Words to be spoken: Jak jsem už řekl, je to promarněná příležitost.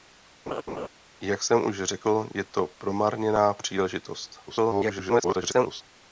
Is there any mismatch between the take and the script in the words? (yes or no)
yes